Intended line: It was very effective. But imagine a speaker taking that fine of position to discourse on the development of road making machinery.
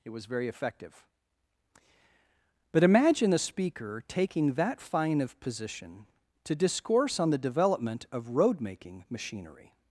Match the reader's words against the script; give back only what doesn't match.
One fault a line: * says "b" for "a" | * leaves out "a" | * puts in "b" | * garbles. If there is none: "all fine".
all fine